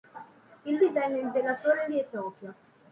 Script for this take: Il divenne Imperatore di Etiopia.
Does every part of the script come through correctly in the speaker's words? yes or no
yes